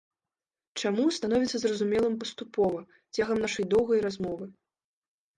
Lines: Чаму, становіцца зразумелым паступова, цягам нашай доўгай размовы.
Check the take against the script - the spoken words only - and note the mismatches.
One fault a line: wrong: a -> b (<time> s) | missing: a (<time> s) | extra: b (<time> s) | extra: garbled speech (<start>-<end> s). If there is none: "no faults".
no faults